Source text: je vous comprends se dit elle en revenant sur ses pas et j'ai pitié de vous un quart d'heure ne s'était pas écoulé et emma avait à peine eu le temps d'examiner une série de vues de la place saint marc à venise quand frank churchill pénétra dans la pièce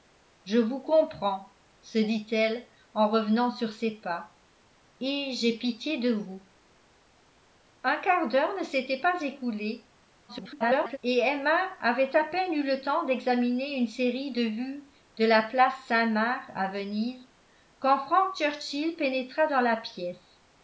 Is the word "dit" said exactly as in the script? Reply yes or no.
yes